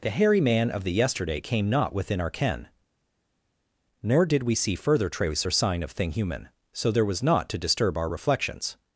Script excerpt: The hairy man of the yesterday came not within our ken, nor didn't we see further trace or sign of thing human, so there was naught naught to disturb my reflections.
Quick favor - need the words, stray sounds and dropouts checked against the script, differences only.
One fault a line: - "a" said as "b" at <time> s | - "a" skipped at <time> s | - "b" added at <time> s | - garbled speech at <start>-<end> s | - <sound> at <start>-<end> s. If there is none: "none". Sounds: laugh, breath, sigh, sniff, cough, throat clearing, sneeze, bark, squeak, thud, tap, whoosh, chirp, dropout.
- "didn't" said as "did" at 4.2 s
- "naught" skipped at 7.5 s
- "my" said as "our" at 8.0 s